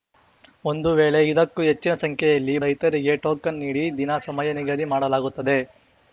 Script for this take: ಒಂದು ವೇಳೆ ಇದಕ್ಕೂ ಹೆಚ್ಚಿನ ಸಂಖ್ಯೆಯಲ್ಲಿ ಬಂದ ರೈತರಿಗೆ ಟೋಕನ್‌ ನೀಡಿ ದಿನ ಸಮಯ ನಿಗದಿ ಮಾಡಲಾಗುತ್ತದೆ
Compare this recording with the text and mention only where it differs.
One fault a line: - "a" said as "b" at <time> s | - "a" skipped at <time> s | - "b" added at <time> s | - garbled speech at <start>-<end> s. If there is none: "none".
- "ಬಂದ" skipped at 2.5 s